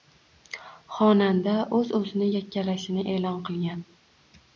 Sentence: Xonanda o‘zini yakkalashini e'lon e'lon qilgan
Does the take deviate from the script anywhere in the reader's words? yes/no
yes